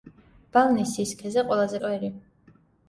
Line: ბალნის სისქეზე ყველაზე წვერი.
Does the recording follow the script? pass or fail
pass